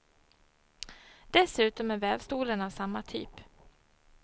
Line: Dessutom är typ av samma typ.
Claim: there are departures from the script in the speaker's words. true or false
true